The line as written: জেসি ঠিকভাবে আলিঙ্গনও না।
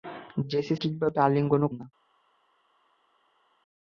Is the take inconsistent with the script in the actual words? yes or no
no